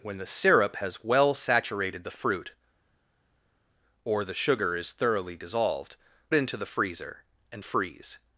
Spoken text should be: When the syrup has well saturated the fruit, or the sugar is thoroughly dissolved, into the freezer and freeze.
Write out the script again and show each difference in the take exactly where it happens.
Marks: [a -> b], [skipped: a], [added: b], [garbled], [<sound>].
When the syrup has well saturated the fruit, or the sugar is thoroughly dissolved, into the freezer and freeze.